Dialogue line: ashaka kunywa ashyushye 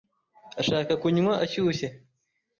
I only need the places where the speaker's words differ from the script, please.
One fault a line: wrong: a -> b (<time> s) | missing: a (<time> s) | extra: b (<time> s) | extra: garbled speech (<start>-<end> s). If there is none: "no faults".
no faults